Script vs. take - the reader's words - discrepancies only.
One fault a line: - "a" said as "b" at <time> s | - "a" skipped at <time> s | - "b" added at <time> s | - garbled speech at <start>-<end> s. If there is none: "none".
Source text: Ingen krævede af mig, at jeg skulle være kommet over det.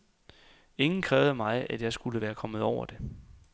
none